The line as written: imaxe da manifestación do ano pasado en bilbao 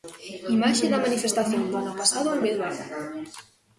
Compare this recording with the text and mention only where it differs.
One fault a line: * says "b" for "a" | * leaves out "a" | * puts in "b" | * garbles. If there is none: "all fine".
all fine